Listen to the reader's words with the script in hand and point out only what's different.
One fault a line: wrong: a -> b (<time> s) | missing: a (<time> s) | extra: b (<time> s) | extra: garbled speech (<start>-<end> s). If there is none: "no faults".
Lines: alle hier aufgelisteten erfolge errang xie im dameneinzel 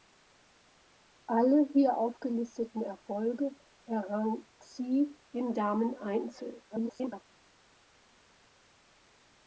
extra: garbled speech (6.7-7.2 s)